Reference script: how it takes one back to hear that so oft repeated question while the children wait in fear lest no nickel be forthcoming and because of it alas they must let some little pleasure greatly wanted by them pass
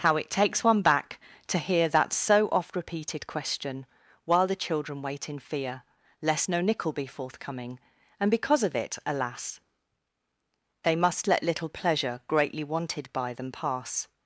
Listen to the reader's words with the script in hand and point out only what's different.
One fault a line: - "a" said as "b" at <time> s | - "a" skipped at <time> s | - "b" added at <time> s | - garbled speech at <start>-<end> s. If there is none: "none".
- "some" skipped at 11.4 s